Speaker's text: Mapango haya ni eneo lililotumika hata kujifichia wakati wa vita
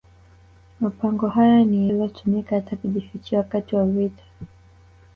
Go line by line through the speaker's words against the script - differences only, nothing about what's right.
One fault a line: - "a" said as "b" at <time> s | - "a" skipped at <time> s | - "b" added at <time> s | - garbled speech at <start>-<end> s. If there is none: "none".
- "eneo" skipped at 1.9 s